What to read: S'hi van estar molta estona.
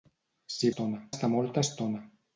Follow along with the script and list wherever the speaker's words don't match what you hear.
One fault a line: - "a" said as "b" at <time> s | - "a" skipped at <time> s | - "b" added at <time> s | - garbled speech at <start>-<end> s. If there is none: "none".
- "van" said as "estona" at 0.7 s